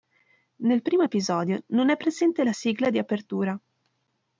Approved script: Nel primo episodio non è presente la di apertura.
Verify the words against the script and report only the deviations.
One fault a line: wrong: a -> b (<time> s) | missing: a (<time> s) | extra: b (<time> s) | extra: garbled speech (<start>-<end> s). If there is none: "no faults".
extra: sigla (2.5 s)